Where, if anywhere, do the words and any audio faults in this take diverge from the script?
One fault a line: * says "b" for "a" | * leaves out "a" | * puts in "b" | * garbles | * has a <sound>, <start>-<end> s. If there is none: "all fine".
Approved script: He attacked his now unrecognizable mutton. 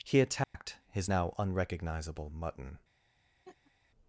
* has a dropout, 0.4-0.5 s
* has a laugh, 3.5-3.7 s